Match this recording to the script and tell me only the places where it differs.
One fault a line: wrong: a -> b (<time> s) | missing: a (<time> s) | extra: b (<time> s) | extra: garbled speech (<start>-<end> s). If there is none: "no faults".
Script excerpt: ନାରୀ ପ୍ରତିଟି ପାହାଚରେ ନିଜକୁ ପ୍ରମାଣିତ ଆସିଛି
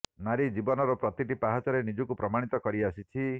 extra: ଜୀବନର (0.5 s)
extra: କରି (2.6 s)